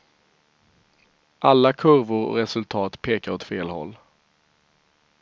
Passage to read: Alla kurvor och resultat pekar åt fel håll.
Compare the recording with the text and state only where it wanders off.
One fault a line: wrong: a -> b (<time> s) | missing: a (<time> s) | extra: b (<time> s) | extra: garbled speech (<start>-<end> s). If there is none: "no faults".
no faults